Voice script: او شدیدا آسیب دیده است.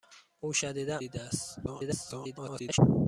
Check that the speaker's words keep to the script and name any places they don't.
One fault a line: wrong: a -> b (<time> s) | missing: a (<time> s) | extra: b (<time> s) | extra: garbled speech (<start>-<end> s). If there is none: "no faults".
missing: آسیب (1.0 s)
extra: garbled speech (1.7-2.8 s)